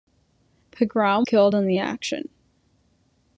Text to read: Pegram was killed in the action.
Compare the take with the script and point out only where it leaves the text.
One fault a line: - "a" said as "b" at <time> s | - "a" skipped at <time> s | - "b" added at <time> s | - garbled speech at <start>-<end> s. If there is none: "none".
- "was" skipped at 1.3 s